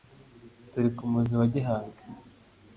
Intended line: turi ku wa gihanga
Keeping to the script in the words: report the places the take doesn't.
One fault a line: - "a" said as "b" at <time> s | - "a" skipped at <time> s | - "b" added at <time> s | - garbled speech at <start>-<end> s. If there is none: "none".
- "muzi" added at 1.1 s